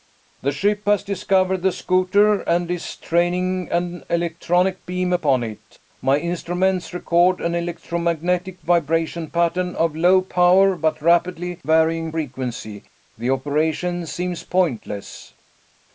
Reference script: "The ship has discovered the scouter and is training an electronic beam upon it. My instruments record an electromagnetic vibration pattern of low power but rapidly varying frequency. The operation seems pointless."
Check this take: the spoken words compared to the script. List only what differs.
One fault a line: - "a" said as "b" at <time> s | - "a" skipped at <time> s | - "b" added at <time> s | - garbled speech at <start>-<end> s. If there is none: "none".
none